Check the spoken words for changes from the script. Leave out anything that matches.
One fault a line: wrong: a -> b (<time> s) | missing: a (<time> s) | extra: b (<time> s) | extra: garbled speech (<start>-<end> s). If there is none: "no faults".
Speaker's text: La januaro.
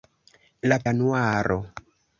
no faults